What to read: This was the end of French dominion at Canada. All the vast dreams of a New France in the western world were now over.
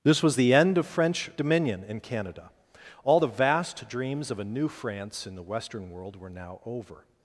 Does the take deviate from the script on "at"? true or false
true